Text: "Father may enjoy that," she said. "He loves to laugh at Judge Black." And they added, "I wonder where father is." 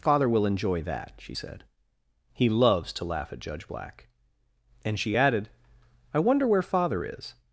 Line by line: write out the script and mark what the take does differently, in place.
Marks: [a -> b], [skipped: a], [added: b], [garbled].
"Father [may -> will] enjoy that," she said. "He loves to laugh at Judge Black." And [they -> she] added, "I wonder where father is."